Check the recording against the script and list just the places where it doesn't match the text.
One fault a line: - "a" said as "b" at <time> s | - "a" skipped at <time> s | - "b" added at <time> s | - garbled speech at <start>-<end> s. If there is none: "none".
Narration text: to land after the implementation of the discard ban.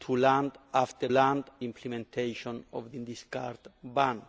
- "the" said as "land" at 1.1 s